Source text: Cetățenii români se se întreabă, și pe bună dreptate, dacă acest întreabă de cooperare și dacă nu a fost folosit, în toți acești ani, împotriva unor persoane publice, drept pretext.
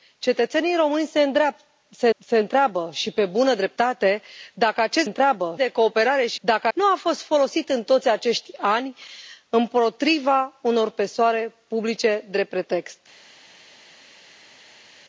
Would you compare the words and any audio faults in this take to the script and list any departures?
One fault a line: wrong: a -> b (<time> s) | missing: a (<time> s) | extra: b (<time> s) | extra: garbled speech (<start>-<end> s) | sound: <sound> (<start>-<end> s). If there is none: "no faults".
no faults